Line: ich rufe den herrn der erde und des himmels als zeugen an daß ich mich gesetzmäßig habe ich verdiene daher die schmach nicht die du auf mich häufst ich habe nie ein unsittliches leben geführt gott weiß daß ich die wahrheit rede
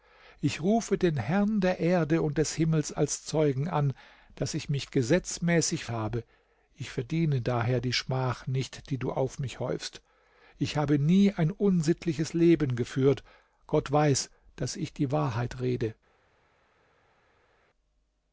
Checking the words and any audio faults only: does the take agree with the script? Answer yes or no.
yes